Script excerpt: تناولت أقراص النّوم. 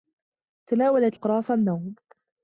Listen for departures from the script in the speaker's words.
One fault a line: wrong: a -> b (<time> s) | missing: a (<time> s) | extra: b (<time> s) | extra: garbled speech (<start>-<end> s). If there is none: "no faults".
no faults